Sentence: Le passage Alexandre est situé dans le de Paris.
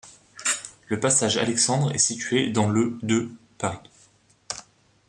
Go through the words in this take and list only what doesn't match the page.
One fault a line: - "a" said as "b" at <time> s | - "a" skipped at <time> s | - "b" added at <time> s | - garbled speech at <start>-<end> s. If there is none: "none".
none